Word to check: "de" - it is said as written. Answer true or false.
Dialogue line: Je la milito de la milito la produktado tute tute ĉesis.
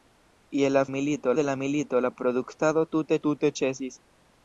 true